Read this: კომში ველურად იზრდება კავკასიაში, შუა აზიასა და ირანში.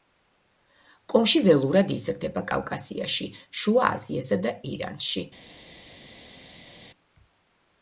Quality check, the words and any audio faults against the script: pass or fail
pass